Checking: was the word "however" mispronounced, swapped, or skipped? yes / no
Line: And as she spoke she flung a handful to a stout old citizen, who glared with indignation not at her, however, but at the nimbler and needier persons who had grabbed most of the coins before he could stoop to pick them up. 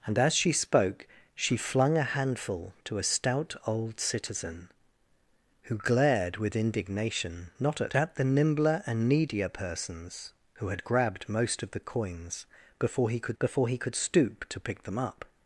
yes